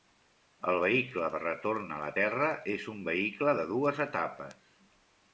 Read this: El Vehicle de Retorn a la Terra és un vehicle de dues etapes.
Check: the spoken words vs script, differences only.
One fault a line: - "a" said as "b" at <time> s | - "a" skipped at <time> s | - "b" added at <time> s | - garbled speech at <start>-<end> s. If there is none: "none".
none